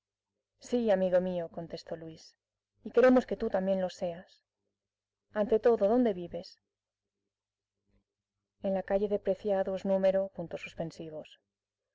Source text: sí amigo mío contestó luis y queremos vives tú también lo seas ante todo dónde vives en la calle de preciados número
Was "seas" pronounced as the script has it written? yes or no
yes